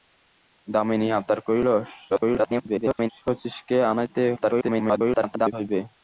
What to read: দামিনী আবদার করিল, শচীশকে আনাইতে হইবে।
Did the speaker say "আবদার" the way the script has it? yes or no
yes